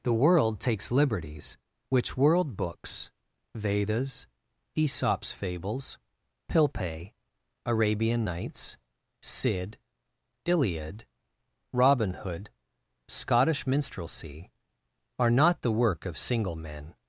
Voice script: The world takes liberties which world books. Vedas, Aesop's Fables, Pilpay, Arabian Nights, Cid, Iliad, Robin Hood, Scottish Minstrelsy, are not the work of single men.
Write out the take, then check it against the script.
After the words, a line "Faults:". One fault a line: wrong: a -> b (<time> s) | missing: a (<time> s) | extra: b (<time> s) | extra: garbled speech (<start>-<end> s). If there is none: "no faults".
The world takes liberties which world books. Vedas, Aesop's Fables, Pilpay, Arabian Nights, Cid, Iliad, Robin Hood, Scottish Minstrelsy, are not the work of single men.
Faults:
no faults